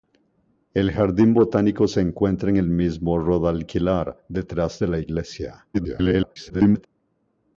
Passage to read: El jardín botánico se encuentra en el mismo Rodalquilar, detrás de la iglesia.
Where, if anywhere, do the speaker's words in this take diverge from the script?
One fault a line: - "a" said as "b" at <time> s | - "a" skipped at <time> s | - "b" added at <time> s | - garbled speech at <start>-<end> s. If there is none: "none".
- garbled speech at 5.7-6.9 s